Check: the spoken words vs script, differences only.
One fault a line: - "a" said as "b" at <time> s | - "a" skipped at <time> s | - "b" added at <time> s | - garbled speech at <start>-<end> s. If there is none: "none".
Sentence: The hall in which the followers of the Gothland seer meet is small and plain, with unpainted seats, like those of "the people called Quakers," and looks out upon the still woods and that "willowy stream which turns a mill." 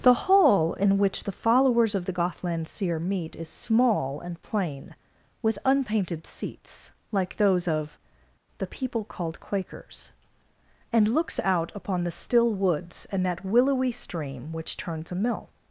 none